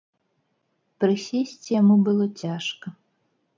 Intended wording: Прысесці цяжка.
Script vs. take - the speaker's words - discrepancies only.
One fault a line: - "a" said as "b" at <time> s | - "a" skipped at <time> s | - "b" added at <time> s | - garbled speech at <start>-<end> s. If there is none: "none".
- "яму было" added at 1.8 s